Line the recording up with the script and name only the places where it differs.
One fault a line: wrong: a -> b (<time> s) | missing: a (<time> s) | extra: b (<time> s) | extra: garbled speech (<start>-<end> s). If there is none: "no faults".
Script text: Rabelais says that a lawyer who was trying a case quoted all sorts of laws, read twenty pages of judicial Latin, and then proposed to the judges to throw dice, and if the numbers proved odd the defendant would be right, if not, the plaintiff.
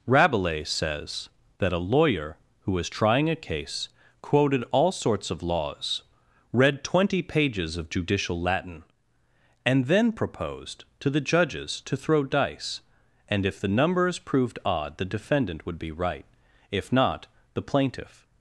no faults